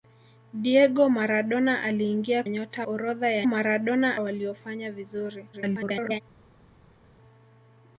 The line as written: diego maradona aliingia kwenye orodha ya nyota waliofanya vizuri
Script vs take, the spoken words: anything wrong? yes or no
yes